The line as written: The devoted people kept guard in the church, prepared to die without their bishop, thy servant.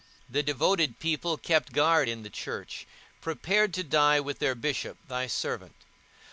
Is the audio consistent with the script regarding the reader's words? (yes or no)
no